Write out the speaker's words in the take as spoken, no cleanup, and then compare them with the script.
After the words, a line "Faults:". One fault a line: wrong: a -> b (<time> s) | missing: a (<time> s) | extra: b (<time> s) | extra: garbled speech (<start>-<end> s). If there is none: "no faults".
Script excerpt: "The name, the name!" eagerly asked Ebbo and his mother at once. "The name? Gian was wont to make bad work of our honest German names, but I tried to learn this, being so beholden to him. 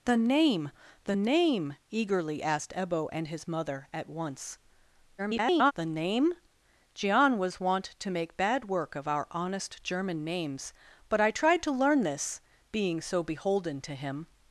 "The name, the name!" eagerly asked Ebbo and his mother at once. [garbled] "The name? Gian was wont to make bad work of our honest German names, but I tried to learn this, being so beholden to him.
Faults:
extra: garbled speech (5.2-5.7 s)